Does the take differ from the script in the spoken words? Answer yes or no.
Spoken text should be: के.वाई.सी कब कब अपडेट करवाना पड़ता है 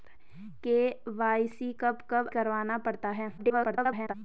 yes